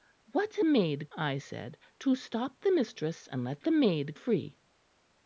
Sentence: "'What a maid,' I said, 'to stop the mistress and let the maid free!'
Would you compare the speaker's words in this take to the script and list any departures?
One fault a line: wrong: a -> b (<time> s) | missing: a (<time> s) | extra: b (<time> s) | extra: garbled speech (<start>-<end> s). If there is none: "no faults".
no faults